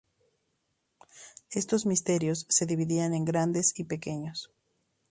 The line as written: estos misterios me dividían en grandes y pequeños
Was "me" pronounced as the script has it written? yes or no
no